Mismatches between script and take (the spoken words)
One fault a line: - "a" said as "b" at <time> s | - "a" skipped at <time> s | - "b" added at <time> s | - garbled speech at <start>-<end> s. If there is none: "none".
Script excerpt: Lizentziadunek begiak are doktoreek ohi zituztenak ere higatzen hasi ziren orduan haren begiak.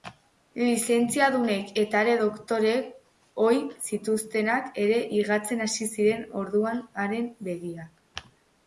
- "begiak" said as "eta" at 1.8 s